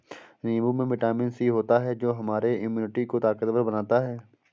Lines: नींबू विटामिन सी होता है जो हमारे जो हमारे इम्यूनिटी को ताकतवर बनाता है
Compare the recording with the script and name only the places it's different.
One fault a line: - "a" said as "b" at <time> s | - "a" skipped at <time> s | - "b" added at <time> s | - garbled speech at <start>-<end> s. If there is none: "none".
- "में" added at 0.7 s
- "जो हमारे" skipped at 2.5 s